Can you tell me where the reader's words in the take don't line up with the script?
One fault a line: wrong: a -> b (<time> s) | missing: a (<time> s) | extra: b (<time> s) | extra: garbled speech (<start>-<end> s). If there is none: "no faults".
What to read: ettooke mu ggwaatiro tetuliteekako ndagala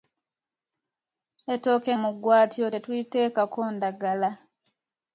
no faults